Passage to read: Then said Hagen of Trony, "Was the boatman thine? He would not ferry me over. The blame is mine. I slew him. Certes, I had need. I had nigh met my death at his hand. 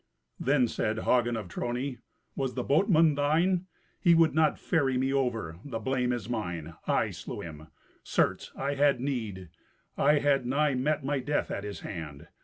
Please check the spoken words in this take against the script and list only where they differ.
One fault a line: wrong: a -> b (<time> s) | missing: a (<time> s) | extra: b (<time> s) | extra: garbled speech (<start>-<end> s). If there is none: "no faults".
no faults